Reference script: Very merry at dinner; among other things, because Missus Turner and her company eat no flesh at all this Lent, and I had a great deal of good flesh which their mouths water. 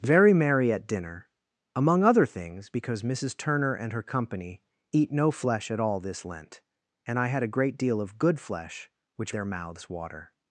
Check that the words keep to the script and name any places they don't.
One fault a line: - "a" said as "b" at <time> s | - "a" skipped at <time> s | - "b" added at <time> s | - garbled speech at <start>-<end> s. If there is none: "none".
none